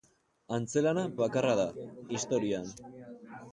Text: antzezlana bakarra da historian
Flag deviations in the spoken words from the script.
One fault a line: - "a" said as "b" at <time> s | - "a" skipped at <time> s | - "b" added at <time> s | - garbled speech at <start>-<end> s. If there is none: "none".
none